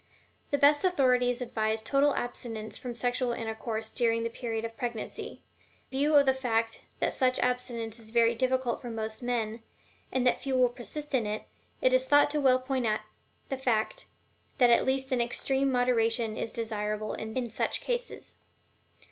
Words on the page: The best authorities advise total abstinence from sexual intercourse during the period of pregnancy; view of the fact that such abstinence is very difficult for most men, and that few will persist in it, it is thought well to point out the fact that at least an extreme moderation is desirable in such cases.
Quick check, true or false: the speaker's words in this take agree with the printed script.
true